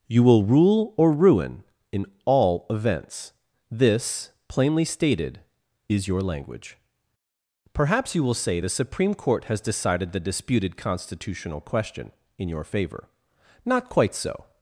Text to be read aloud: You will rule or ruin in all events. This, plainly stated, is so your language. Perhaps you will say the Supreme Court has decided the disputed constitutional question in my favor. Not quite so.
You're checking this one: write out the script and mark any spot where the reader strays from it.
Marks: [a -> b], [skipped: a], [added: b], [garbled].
You will rule or ruin in all events. This, plainly stated, is [skipped: so] your language. Perhaps you will say the Supreme Court has decided the disputed constitutional question in [my -> your] favor. Not quite so.